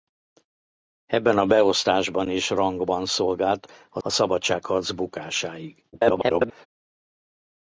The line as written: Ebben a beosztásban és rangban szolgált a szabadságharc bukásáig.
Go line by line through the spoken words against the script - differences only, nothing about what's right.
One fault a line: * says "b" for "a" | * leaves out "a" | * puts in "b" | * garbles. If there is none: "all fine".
* puts in "a"
* garbles